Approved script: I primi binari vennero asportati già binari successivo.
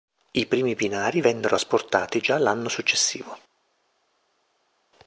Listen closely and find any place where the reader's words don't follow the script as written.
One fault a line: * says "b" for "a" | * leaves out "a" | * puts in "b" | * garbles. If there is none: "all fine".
* says "l'anno" for "binari"